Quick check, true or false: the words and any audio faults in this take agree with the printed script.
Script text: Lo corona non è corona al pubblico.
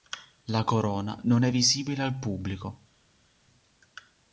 false